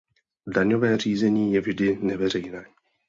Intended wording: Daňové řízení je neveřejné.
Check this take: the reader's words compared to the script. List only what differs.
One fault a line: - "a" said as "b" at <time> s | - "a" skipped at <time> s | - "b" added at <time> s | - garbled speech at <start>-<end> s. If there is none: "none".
- "vždy" added at 1.6 s